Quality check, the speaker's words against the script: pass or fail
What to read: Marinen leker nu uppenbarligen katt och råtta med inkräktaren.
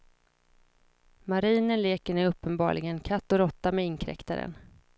pass